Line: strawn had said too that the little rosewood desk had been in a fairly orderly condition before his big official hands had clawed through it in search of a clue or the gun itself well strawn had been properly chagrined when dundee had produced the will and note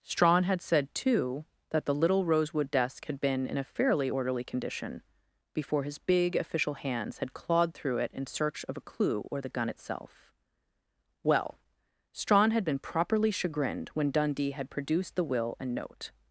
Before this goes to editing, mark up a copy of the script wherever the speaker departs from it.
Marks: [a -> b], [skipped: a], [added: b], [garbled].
strawn had said too that the little rosewood desk had been in a fairly orderly condition before his big official hands had clawed through it in search of a clue or the gun itself well strawn had been properly chagrined when dundee had produced the will and note